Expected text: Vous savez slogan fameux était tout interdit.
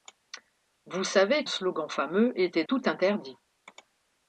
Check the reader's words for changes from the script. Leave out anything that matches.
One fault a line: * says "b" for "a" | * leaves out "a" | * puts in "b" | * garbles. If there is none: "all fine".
all fine